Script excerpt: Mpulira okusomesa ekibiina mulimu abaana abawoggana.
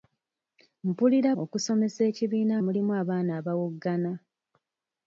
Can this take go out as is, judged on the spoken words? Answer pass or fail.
pass